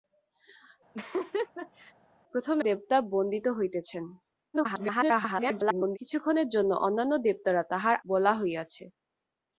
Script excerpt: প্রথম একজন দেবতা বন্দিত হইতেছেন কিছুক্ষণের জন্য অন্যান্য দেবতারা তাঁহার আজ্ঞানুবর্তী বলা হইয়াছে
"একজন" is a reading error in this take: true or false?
true